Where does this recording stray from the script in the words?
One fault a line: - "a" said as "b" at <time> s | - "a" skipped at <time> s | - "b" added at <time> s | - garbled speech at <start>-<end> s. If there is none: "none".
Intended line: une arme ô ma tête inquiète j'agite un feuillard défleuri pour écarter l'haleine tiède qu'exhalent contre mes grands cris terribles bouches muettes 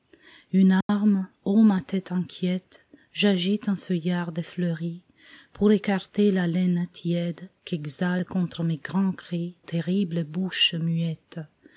none